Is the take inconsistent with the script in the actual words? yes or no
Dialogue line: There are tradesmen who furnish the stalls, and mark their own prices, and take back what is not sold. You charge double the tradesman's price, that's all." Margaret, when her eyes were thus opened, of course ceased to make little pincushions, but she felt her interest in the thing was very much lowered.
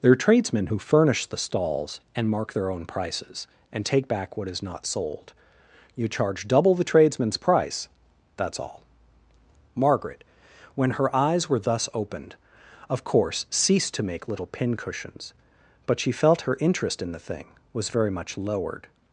no